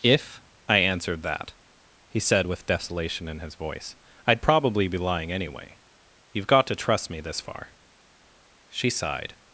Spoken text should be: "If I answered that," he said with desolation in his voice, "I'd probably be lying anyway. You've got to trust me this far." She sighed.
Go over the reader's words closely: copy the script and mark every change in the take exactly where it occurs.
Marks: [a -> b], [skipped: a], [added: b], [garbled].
"If I answered that," he said with desolation in his voice, "I'd probably be lying anyway. You've got to trust me this far." She sighed.